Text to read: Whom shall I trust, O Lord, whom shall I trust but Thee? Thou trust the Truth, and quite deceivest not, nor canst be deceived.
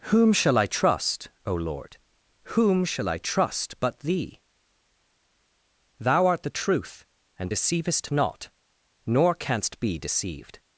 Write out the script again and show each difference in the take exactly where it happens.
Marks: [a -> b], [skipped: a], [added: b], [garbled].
Whom shall I trust, O Lord, whom shall I trust but Thee? Thou [trust -> art] the Truth, and [skipped: quite] deceivest not, nor canst be deceived.